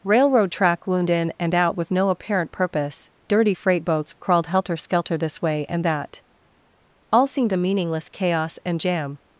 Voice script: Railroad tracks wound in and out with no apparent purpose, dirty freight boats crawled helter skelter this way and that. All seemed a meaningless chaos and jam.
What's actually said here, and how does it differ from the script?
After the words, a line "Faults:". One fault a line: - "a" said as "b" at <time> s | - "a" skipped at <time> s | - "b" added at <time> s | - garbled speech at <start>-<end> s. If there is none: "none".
Railroad track wound in and out with no apparent purpose, dirty freight boats crawled helter skelter this way and that. All seemed a meaningless chaos and jam.
Faults:
- "tracks" said as "track" at 0.5 s